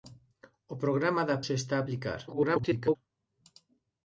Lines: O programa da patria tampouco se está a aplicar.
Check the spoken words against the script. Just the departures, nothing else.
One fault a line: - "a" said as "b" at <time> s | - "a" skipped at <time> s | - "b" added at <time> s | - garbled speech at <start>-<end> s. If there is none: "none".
- "patria tampouco" skipped at 1.4 s
- garbled speech at 2.3-3.0 s